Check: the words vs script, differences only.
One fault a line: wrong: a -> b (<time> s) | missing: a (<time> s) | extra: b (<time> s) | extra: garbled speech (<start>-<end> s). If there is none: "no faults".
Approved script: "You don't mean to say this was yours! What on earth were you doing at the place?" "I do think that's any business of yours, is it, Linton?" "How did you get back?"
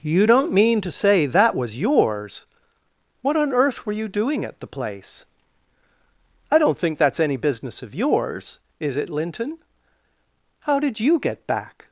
wrong: this -> that (1.3 s)
wrong: do -> don't (6.6 s)